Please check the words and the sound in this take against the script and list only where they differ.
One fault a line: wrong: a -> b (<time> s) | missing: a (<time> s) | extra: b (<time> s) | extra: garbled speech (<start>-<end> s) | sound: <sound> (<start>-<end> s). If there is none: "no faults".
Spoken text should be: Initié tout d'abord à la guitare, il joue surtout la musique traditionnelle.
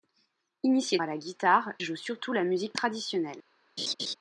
missing: tout d'abord (1.0 s)
missing: il (1.7 s)
sound: laugh (3.8-4.1 s)